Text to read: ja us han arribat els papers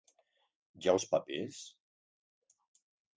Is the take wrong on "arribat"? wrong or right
wrong